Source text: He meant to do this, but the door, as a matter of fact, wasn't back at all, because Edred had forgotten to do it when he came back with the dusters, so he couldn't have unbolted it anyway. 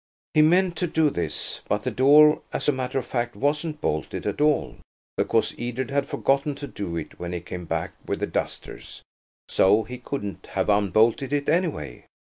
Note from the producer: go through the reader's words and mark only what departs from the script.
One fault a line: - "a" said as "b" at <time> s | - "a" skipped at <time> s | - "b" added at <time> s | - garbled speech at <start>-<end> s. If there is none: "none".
- "back" said as "bolted" at 3.8 s